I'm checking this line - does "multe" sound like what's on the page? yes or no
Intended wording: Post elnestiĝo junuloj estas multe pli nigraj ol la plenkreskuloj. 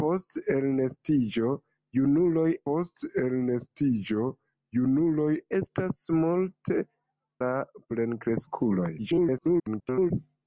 no